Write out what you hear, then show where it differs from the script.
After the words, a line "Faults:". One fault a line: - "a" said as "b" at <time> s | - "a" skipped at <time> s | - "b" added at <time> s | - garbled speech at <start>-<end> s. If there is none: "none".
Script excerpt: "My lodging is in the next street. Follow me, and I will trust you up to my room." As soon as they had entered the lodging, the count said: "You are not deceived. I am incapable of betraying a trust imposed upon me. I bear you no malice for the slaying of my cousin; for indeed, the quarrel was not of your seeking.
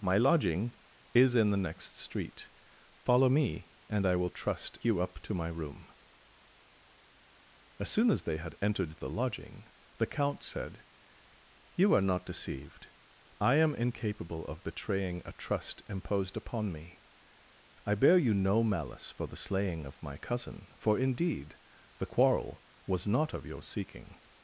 "My lodging is in the next street. Follow me, and I will trust you up to my room." As soon as they had entered the lodging, the count said: "You are not deceived. I am incapable of betraying a trust imposed upon me. I bear you no malice for the slaying of my cousin; for indeed, the quarrel was not of your seeking.
Faults:
none